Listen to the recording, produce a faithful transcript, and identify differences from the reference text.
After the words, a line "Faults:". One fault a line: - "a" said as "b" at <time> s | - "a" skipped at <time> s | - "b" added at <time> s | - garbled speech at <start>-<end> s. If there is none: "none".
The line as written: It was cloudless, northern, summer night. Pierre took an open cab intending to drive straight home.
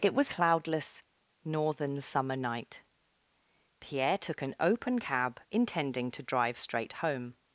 It was cloudless, northern, summer night. Pierre took an open cab intending to drive straight home.
Faults:
none